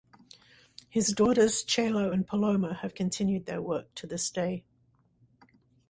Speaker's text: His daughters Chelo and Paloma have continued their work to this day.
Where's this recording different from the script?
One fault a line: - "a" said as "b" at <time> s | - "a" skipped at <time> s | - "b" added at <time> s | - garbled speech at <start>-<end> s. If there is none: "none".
none